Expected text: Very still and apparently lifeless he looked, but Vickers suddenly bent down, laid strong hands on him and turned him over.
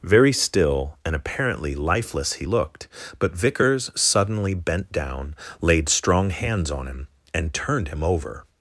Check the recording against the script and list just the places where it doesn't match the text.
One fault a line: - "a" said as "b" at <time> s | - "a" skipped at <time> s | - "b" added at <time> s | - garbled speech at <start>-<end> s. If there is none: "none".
none